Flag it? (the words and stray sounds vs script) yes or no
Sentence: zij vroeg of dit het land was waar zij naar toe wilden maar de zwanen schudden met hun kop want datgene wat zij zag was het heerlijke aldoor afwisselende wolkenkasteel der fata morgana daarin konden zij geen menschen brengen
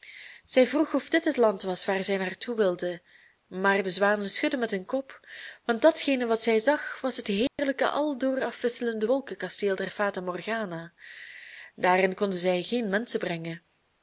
yes